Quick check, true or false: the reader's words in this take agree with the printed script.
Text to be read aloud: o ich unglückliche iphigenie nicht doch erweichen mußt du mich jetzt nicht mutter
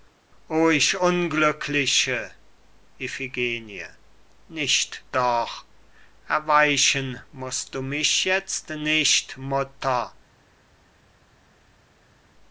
true